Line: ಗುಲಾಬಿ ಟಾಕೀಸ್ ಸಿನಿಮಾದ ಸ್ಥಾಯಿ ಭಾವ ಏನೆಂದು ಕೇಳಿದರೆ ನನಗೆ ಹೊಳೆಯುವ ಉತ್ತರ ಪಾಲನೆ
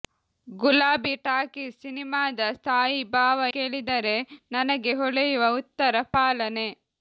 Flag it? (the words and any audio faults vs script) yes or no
yes